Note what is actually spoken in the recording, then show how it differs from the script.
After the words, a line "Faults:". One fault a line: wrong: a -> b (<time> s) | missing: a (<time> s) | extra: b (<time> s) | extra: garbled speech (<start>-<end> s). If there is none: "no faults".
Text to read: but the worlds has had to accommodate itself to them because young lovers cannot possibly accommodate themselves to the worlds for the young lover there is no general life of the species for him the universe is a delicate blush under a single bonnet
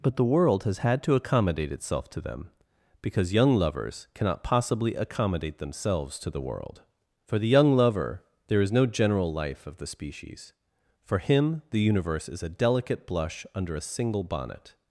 but the world has had to accommodate itself to them because young lovers cannot possibly accommodate themselves to the world for the young lover there is no general life of the species for him the universe is a delicate blush under a single bonnet
Faults:
wrong: worlds -> world (0.2 s)
wrong: worlds -> world (6.4 s)